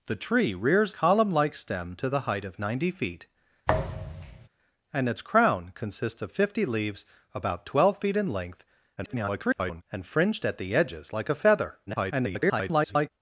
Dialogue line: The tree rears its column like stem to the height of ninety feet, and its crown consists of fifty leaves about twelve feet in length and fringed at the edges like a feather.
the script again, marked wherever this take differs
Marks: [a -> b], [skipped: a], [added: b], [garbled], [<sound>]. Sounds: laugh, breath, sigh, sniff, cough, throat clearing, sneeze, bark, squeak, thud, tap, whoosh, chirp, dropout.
The tree rears [skipped: its] column like stem to the height of ninety feet, [thud] and its crown consists of fifty leaves about twelve feet in length [garbled] and fringed at the edges like a feather. [garbled]